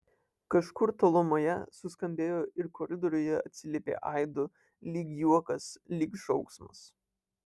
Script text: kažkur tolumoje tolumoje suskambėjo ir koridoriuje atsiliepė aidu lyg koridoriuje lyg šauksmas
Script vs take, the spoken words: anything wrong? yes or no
yes